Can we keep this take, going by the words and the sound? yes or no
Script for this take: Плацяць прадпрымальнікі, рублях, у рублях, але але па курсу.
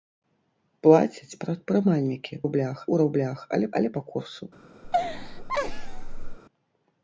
no